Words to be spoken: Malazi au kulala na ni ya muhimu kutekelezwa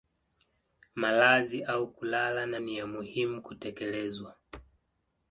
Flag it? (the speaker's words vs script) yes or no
no